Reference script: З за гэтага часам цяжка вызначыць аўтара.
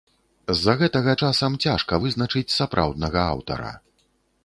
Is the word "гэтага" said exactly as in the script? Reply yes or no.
yes